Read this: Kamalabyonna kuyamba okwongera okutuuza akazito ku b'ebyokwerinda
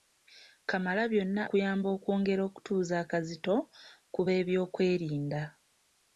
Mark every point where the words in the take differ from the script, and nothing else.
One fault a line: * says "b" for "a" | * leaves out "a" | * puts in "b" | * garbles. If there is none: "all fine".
all fine